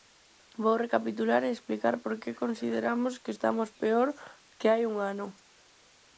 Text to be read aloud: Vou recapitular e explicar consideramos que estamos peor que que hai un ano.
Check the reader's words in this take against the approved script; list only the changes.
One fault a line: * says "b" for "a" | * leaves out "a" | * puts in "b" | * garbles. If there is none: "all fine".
* puts in "por que"
* leaves out "que"